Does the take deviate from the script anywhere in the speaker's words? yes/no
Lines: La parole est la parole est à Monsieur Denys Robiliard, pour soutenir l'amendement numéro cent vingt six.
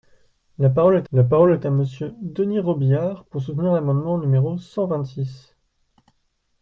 no